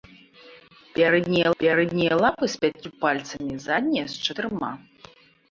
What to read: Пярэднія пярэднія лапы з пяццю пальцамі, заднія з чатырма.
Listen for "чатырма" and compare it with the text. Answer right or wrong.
right